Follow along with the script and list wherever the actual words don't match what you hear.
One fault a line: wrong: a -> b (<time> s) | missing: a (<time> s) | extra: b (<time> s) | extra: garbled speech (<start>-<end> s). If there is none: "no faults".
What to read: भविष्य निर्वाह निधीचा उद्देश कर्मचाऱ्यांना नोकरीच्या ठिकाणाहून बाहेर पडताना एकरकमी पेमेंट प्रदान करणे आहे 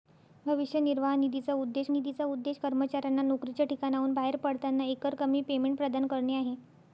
extra: निधीचा उद्देश (1.9 s)